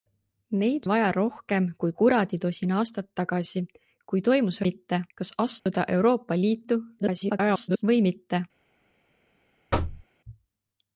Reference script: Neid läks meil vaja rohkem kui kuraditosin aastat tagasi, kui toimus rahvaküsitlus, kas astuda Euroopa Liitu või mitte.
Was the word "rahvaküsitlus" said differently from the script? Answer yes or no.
yes